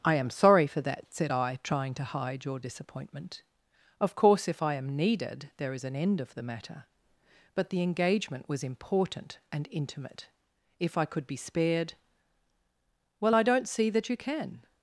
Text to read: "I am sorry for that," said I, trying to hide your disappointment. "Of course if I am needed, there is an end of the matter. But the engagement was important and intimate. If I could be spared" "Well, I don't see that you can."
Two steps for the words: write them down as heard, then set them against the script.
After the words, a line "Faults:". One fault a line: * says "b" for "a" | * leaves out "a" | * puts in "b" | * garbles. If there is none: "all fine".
"I am sorry for that," said I, trying to hide your disappointment. "Of course if I am needed, there is an end of the matter. But the engagement was important and intimate. If I could be spared" "Well, I don't see that you can."
Faults:
all fine